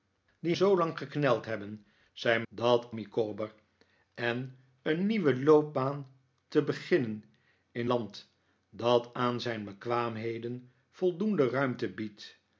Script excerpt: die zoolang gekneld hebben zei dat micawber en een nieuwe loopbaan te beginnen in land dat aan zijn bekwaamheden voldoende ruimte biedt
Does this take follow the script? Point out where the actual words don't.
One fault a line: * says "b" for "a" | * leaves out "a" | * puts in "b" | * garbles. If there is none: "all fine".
all fine